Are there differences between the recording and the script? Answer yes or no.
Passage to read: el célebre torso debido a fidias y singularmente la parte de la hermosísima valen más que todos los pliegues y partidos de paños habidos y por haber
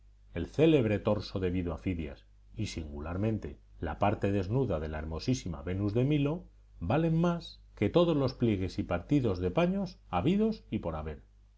yes